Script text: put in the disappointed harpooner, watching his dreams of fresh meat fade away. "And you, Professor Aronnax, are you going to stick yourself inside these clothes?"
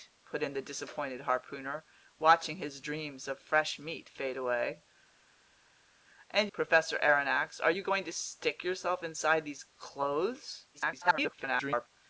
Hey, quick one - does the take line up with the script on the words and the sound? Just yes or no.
no